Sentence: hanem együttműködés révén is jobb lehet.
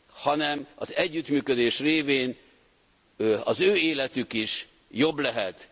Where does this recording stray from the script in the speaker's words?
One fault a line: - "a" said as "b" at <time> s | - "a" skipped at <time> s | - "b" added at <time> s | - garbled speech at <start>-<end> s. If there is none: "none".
- "az" added at 0.7 s
- "az ő életük" added at 3.4 s